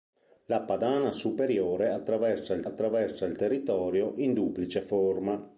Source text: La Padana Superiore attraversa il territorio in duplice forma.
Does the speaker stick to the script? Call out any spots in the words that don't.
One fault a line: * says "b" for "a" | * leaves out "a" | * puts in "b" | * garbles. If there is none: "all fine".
* puts in "attraversa il"